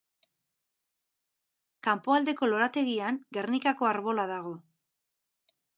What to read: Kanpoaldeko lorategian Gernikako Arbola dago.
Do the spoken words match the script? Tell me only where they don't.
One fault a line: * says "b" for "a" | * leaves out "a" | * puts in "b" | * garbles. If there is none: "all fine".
all fine